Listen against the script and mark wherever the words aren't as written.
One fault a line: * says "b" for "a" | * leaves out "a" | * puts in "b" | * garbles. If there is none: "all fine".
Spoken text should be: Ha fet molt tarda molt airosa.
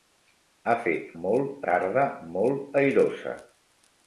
all fine